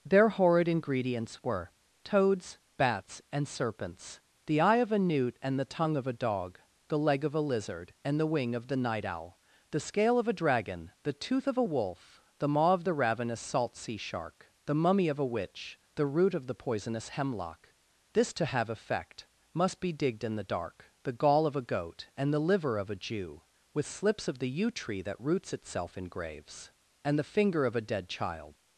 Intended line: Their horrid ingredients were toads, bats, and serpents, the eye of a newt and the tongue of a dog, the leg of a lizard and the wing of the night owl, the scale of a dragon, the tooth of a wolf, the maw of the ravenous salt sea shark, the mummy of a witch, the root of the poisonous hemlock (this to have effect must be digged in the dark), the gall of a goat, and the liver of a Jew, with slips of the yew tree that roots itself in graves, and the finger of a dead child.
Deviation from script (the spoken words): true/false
false